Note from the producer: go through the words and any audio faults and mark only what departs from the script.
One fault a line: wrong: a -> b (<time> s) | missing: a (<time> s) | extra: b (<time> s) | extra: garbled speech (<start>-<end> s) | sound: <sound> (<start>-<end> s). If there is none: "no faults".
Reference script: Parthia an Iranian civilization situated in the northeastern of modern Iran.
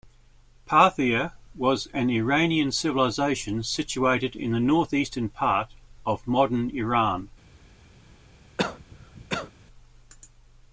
extra: was (1.6 s)
extra: part (5.3 s)
sound: cough (8.6-9.5 s)